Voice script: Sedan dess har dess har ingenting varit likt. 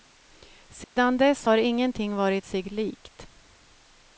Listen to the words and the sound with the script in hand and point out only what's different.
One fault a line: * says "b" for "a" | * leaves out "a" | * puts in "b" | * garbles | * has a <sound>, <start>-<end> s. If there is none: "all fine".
* has a dropout, 0.8-1.0 s
* leaves out "dess har"
* puts in "sig"